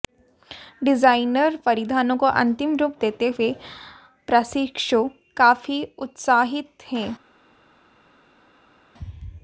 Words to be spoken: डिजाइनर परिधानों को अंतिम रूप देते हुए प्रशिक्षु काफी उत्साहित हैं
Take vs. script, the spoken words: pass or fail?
pass